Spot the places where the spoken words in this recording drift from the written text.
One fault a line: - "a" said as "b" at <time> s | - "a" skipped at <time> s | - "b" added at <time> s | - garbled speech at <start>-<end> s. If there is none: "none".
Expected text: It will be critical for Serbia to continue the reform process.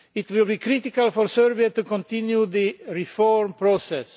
none